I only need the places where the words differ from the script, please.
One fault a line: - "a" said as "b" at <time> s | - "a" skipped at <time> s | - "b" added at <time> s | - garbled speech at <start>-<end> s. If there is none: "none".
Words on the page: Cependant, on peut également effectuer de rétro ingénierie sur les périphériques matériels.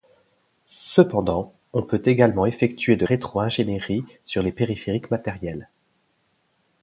none